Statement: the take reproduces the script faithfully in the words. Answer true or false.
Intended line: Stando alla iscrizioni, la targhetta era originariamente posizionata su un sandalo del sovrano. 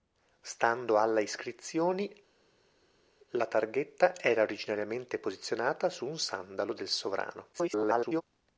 false